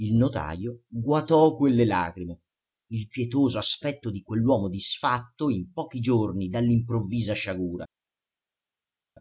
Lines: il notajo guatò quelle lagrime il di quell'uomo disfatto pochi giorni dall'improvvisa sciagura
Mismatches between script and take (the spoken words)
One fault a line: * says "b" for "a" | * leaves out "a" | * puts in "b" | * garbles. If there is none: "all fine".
* puts in "pietoso aspetto"
* puts in "in"